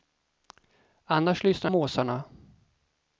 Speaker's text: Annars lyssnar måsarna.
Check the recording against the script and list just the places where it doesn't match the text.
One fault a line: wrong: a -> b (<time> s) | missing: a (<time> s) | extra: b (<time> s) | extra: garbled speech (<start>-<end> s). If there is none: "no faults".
no faults